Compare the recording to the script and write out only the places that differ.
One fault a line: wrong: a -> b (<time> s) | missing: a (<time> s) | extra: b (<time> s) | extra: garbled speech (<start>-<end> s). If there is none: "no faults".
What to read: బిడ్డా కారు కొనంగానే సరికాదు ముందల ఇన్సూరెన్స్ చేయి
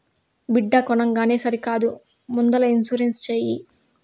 missing: కారు (0.8 s)